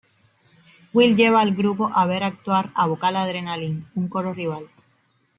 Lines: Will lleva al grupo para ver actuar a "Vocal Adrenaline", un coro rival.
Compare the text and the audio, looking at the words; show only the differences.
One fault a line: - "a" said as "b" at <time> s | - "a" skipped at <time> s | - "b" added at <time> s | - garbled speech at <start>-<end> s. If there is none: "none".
- "para" said as "a" at 1.9 s